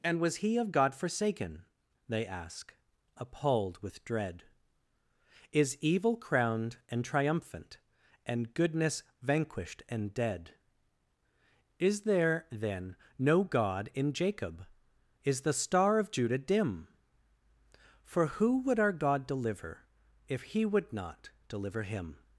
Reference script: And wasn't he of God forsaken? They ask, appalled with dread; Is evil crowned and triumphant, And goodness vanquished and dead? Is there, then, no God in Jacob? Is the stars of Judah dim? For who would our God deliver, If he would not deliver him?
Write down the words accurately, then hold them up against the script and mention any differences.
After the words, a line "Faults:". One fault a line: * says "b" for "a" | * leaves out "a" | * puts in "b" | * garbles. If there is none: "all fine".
And was he of God forsaken? They ask, appalled with dread; Is evil crowned and triumphant, And goodness vanquished and dead? Is there, then, no God in Jacob? Is the star of Judah dim? For who would our God deliver, If he would not deliver him?
Faults:
* says "was" for "wasn't"
* says "star" for "stars"